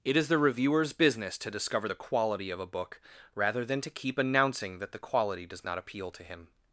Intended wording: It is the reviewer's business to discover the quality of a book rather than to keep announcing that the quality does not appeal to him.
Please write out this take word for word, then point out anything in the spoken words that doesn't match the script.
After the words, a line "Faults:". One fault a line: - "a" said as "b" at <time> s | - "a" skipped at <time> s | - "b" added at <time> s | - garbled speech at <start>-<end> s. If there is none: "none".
It is the reviewer's business to discover the quality of a book rather than to keep announcing that the quality does not appeal to him.
Faults:
none